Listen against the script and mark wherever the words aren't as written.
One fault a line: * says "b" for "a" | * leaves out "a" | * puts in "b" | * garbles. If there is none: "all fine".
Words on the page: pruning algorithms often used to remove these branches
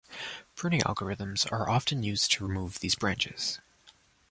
* puts in "are"